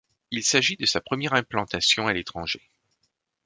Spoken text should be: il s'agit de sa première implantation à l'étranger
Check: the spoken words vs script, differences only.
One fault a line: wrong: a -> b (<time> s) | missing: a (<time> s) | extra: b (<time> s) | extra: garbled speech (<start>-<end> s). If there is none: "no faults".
no faults